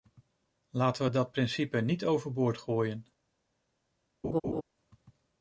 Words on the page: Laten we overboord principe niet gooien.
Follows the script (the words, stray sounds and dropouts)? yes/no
no